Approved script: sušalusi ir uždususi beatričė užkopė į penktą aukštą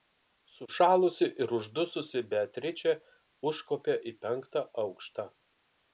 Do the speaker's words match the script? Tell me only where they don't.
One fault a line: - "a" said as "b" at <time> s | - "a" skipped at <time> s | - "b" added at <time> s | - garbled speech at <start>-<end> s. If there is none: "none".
none